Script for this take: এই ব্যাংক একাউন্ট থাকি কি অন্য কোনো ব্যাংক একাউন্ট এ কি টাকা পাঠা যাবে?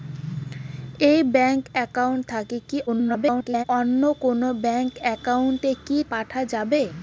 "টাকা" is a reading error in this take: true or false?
true